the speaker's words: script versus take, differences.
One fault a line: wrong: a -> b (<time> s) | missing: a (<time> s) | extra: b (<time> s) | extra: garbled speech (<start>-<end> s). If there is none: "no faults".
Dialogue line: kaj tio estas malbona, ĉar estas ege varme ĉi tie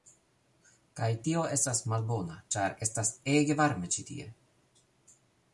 no faults